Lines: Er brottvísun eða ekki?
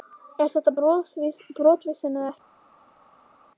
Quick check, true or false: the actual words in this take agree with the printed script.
false